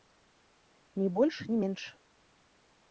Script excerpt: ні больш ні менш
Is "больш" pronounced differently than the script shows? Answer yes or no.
no